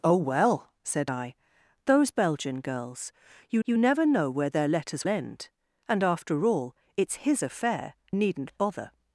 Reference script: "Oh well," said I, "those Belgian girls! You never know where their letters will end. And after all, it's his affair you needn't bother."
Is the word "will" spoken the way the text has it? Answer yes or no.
no